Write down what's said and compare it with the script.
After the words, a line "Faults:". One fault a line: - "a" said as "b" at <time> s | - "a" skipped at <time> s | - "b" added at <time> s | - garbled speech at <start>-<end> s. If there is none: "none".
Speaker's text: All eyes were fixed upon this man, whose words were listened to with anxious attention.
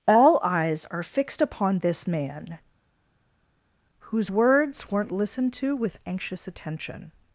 All eyes are fixed upon this man, whose words weren't listened to with anxious attention.
Faults:
- "were" said as "are" at 0.9 s
- "were" said as "weren't" at 4.9 s